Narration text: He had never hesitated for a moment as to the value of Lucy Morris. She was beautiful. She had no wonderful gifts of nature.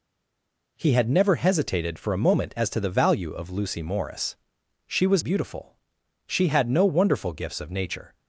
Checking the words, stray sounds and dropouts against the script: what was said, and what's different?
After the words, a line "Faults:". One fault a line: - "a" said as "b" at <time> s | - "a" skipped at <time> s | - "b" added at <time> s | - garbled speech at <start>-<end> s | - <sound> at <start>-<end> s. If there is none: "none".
He had never hesitated for a moment as to the value of Lucy Morris. She was beautiful. She had no wonderful gifts of nature.
Faults:
none